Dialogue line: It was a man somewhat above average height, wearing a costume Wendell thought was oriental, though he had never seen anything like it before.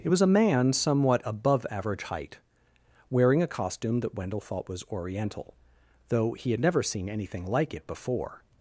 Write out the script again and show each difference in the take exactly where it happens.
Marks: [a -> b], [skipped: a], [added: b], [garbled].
It was a man somewhat above average height, wearing a costume [added: that] Wendell thought was oriental, though he had never seen anything like it before.